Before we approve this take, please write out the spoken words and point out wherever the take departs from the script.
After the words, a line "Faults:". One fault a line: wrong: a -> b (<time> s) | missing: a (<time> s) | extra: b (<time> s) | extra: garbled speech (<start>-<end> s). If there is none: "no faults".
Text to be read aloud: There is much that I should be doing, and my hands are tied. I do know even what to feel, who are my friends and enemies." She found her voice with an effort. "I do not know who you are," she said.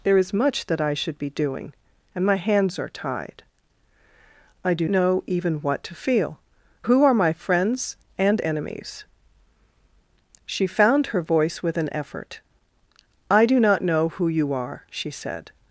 There is much that I should be doing, and my hands are tied. I do know even what to feel, who are my friends and enemies." She found her voice with an effort. "I do not know who you are," she said.
Faults:
no faults